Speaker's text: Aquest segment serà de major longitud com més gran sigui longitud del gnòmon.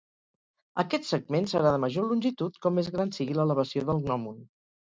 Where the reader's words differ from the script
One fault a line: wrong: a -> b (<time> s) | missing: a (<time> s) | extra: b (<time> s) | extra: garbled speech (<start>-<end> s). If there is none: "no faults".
wrong: longitud -> l'elevació (3.4 s)